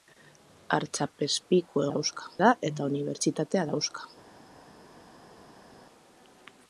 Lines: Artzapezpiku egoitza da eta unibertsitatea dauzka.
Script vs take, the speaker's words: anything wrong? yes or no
yes